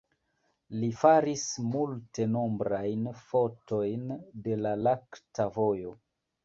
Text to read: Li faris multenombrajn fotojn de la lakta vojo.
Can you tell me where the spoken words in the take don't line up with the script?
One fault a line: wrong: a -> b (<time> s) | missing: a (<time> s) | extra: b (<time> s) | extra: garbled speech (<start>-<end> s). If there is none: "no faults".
no faults